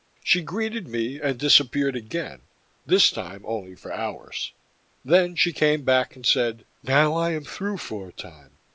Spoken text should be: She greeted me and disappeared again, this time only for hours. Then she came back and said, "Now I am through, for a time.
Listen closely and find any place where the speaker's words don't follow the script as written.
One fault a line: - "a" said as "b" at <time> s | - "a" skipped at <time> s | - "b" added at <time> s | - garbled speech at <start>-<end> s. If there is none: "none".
none